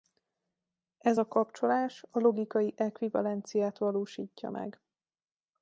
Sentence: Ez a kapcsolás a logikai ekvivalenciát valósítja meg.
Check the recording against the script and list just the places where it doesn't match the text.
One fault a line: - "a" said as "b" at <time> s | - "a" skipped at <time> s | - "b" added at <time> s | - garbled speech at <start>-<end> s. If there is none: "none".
none